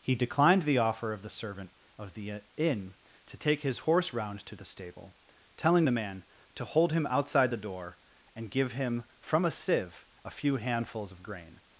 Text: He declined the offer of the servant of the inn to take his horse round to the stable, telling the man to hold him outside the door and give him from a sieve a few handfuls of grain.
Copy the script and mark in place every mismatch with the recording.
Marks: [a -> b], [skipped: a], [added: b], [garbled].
He declined the offer of the servant of the inn to take his horse round to the stable, telling the man to hold him outside the door and give him from a sieve a few handfuls of grain.